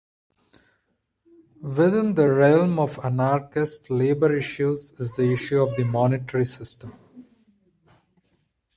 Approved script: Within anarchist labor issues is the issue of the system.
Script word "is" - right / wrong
right